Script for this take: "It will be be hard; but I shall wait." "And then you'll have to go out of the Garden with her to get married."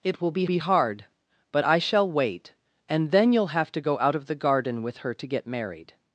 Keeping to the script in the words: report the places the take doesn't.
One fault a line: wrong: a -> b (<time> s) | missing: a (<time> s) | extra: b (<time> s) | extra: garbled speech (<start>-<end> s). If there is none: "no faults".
no faults